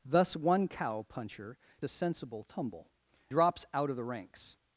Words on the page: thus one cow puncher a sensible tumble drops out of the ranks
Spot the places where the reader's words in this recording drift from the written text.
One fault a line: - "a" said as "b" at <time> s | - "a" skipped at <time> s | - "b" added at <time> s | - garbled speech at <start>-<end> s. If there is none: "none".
none